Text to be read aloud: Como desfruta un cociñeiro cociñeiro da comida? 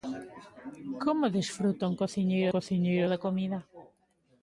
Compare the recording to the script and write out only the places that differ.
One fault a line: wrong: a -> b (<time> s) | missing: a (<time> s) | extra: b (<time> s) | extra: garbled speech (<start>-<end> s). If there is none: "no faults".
no faults